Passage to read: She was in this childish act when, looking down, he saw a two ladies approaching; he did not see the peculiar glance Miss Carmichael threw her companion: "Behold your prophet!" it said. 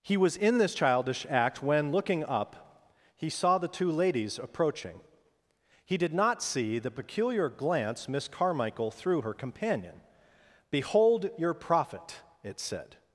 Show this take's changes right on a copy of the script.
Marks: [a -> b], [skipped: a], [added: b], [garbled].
[She -> He] was in this childish act when, looking [down, -> up] he saw [a -> the] two ladies approaching; he did not see the peculiar glance Miss Carmichael threw her companion: "Behold your prophet!" it said.